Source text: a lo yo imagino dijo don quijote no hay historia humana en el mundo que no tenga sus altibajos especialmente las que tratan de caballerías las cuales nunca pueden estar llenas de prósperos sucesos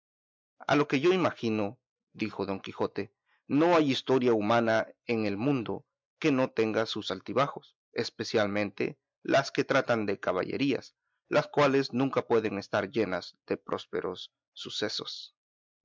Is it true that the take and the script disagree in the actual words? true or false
true